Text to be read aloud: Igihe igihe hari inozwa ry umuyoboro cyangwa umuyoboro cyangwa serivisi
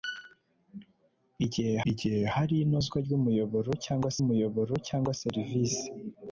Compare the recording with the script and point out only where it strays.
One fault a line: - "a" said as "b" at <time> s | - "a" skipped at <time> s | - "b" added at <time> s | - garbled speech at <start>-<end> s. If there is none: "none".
none